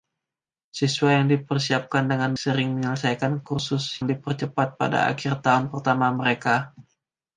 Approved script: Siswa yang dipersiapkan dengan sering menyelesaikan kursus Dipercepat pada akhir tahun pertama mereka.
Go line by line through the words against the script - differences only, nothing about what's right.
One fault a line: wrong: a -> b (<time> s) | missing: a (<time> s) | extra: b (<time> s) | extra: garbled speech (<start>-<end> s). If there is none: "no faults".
no faults